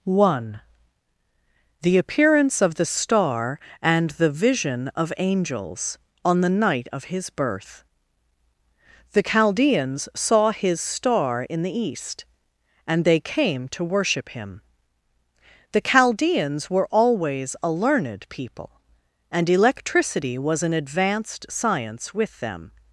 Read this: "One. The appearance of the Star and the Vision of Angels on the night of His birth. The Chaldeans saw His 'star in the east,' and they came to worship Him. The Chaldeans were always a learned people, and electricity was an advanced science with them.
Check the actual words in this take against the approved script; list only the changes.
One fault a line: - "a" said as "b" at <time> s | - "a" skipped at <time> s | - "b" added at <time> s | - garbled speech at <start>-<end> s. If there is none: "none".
none